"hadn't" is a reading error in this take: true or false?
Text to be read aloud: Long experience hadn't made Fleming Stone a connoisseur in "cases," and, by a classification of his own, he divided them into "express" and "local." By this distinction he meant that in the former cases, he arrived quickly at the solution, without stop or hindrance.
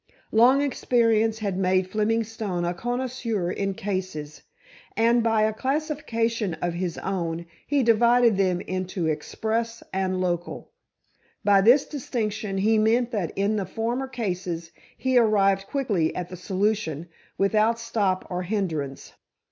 true